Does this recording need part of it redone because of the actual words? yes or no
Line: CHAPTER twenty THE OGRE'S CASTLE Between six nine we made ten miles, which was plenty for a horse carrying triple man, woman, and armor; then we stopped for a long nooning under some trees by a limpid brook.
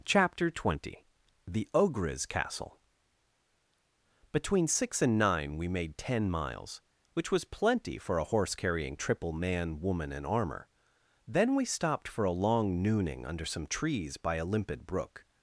yes